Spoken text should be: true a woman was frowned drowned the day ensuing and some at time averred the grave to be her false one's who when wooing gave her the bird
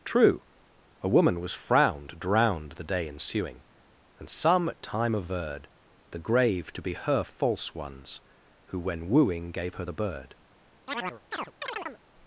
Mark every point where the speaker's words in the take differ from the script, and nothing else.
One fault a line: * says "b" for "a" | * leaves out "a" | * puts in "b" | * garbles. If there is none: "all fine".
all fine